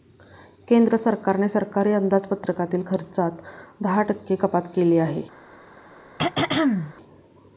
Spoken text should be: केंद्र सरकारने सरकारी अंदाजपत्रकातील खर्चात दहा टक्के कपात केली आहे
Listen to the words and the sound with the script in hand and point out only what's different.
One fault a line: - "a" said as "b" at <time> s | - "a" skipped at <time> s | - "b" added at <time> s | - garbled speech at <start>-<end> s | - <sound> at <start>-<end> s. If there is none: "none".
- throat clearing at 6.2-6.9 s